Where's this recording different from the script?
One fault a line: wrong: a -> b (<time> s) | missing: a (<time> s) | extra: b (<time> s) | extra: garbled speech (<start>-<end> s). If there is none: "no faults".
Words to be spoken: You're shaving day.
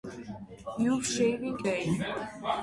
no faults